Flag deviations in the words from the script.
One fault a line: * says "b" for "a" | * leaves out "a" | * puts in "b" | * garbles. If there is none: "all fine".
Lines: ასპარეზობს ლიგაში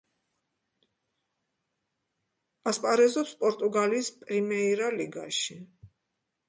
* puts in "პორტუგალიის პრიმეირა"